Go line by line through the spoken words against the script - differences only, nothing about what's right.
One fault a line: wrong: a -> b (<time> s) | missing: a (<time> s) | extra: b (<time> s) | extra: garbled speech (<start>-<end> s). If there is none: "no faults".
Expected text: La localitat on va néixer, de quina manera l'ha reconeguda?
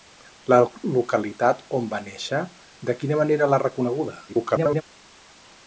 extra: garbled speech (4.3-4.8 s)